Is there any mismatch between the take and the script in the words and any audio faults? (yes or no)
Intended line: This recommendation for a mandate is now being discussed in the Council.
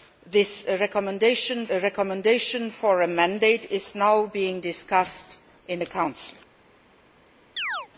yes